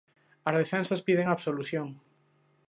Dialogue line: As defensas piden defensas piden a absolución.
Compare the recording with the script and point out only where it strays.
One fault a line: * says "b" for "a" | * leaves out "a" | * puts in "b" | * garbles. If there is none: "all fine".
* leaves out "defensas piden"